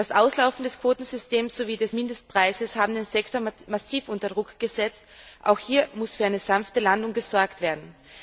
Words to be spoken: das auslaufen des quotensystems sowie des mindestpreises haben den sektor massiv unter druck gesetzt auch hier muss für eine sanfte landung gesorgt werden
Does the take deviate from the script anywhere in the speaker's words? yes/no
no